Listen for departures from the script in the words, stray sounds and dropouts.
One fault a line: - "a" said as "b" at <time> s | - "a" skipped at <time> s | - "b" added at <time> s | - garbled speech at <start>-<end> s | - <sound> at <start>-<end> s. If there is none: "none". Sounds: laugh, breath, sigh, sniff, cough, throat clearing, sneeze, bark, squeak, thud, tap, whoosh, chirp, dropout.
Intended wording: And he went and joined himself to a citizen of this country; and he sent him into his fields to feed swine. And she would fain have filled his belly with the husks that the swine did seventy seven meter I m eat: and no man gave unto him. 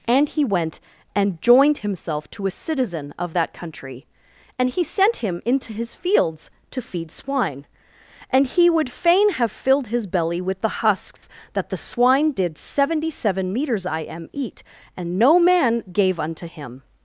- "this" said as "that" at 3.3 s
- "she" said as "he" at 8.5 s
- dropout at 11.2-11.2 s
- "meter" said as "meters" at 13.5 s